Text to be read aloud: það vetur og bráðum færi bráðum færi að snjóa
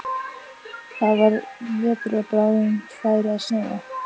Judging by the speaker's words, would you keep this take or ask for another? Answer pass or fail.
fail